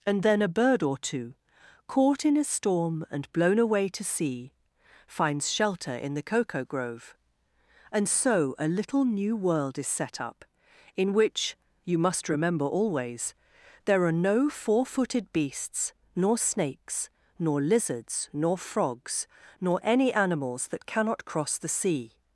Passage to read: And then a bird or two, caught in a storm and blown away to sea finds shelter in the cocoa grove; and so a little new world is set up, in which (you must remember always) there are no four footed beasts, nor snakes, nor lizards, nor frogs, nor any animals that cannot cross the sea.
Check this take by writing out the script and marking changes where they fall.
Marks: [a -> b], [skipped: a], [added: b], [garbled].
And then a bird or two, caught in a storm and blown away to sea finds shelter in the cocoa grove; and so a little new world is set up, in which (you must remember always) there are no four footed beasts, nor snakes, nor lizards, nor frogs, nor any animals that cannot cross the sea.